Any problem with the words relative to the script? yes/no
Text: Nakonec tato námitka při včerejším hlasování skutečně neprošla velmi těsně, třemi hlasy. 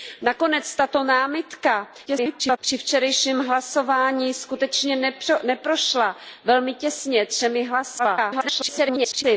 yes